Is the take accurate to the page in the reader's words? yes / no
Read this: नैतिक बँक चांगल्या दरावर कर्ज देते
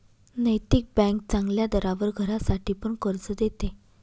no